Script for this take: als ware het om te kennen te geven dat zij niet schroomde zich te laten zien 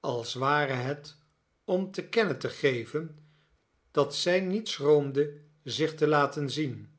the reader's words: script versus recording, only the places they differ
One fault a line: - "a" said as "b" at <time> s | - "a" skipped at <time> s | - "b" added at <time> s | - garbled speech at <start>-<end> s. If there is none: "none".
none